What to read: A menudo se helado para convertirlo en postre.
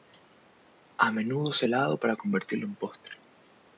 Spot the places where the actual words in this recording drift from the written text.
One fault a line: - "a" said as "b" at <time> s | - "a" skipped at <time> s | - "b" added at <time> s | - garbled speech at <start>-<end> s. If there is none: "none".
none